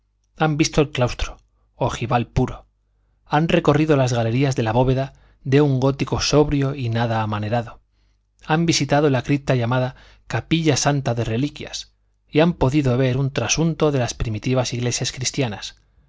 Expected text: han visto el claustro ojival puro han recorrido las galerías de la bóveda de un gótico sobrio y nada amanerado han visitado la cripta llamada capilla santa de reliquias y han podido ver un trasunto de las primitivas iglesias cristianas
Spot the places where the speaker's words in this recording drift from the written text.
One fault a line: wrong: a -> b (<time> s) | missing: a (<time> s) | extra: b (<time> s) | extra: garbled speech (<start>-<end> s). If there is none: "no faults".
no faults